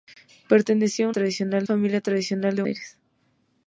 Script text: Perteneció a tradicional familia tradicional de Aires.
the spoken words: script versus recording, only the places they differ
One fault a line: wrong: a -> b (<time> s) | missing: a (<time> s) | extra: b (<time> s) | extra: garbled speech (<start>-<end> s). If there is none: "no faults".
no faults